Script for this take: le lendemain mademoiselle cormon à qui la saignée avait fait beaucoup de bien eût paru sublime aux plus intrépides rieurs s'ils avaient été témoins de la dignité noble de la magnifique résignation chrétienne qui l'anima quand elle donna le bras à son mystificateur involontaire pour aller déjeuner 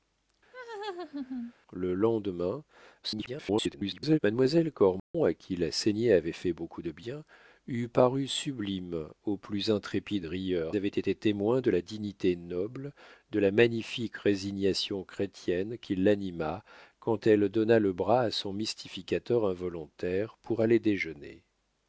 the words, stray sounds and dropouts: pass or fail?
fail